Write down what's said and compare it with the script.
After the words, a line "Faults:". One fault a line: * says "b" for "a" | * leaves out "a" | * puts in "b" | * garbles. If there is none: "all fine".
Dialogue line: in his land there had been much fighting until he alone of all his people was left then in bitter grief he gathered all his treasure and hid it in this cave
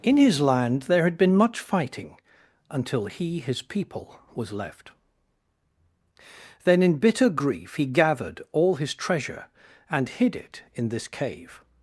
in his land there had been much fighting until he his people was left then in bitter grief he gathered all his treasure and hid it in this cave
Faults:
* leaves out "alone of all"